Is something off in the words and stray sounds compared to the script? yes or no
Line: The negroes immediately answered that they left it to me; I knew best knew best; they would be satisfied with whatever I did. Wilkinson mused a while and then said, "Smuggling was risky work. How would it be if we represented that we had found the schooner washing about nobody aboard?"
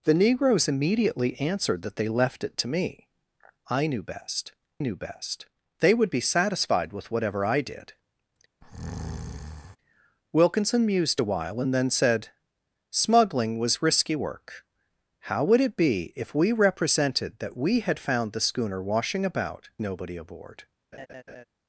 yes